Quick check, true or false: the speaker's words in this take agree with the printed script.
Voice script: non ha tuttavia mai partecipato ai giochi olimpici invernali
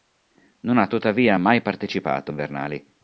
false